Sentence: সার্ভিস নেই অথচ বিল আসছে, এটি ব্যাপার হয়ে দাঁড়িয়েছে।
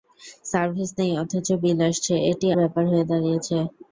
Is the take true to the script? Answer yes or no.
yes